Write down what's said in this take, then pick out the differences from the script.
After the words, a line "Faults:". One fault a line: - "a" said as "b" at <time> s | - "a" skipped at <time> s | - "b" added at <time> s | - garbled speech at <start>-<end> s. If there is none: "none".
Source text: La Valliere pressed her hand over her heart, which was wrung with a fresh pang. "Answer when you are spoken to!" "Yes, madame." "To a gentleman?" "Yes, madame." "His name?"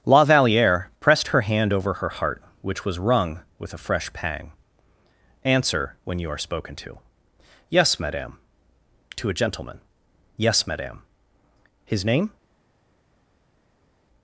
La Valliere pressed her hand over her heart, which was wrung with a fresh pang. "Answer when you are spoken to!" "Yes, madame." "To a gentleman?" "Yes, madame." "His name?"
Faults:
none